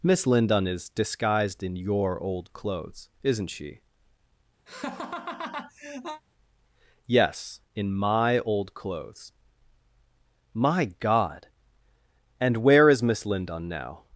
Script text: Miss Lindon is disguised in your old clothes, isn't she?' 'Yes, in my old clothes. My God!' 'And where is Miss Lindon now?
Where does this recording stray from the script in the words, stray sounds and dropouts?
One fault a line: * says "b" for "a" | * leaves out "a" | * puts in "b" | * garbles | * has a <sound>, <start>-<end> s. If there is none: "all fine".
* has a laugh, 4.7-6.2 s